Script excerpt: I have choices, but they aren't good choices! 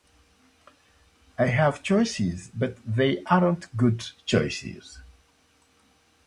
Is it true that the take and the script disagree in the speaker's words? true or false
false